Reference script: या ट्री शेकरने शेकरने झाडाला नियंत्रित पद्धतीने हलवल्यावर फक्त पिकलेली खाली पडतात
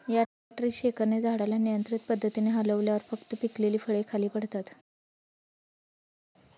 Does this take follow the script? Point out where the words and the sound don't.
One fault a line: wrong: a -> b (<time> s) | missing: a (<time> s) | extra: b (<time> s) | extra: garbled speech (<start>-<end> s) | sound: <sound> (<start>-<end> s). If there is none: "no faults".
missing: शेकरने (1.2 s)
extra: फळे (3.8 s)